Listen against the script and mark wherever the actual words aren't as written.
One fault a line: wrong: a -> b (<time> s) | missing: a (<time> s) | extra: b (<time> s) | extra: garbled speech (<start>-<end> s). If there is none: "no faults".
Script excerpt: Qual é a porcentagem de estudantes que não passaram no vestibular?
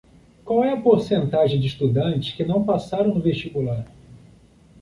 no faults